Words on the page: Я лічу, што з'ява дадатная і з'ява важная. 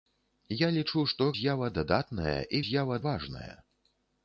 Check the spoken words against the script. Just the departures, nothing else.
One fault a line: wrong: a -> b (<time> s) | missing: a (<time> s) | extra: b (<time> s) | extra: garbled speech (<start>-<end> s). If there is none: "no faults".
no faults